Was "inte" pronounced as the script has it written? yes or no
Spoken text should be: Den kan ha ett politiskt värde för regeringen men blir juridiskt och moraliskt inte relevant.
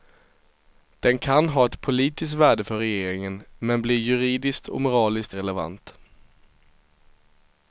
no